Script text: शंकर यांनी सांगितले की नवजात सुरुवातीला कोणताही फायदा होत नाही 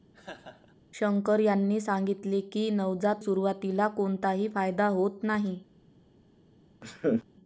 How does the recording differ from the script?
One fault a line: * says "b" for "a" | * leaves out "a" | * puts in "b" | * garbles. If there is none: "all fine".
all fine